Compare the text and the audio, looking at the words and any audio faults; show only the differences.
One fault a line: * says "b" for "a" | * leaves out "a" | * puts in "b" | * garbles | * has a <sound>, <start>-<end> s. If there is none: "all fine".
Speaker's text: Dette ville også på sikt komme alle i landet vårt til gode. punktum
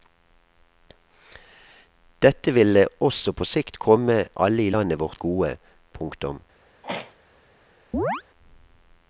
* leaves out "til"
* has a throat clearing, 6.8-7.2 s
* has a chirp, 7.9-8.2 s